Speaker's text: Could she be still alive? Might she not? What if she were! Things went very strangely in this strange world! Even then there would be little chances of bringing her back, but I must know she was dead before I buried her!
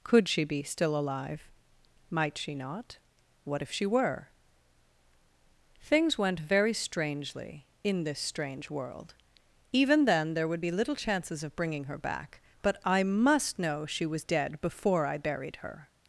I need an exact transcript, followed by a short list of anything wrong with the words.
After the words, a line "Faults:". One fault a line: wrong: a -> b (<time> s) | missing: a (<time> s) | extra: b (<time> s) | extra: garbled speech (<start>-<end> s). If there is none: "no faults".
Could she be still alive? Might she not? What if she were! Things went very strangely in this strange world! Even then there would be little chances of bringing her back, but I must know she was dead before I buried her!
Faults:
no faults